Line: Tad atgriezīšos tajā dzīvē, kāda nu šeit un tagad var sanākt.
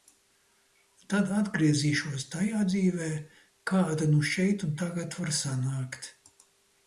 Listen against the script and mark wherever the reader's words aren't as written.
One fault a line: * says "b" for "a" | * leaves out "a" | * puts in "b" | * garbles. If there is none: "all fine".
all fine